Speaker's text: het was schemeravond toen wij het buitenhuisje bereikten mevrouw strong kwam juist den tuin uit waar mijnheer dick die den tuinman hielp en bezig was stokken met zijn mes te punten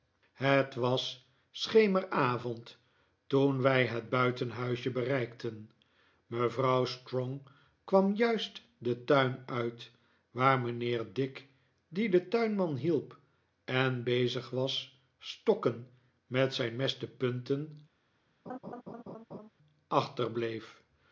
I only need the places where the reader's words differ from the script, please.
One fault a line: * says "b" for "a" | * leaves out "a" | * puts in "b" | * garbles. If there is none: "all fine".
all fine